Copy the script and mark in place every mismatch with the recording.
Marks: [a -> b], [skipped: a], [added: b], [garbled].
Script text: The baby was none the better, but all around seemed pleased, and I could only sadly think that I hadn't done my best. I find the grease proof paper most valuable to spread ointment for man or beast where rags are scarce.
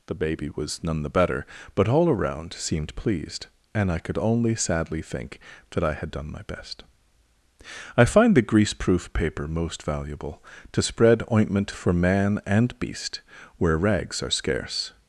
The baby was none the better, but all around seemed pleased, and I could only sadly think that I [hadn't -> had] done my best. I find the grease proof paper most valuable to spread ointment for man [or -> and] beast where rags are scarce.